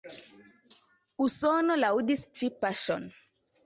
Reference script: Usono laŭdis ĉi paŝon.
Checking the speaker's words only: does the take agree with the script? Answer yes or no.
yes